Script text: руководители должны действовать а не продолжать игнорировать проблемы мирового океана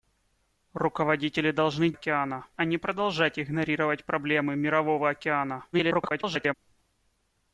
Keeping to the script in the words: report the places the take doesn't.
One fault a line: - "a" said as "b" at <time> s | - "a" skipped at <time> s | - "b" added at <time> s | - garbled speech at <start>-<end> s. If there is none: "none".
- "действовать" said as "океана" at 1.9 s
- garbled speech at 5.7-6.5 s